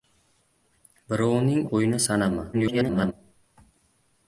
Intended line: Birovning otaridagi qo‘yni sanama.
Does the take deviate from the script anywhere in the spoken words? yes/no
yes